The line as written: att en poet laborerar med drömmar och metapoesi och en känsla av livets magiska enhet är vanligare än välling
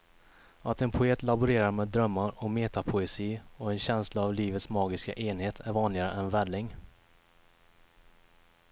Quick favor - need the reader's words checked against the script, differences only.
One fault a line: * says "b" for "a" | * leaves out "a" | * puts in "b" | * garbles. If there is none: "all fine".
all fine